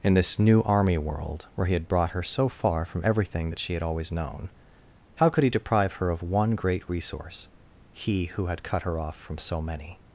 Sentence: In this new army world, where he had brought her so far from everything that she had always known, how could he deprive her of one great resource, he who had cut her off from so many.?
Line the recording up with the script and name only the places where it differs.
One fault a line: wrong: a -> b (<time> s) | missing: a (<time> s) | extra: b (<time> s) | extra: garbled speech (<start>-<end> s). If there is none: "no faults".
no faults